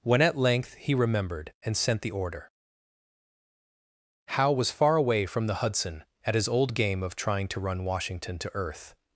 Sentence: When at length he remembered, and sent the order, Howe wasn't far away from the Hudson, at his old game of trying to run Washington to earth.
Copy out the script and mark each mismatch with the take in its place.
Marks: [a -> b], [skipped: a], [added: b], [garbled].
When at length he remembered, and sent the order, Howe [wasn't -> was] far away from the Hudson, at his old game of trying to run Washington to earth.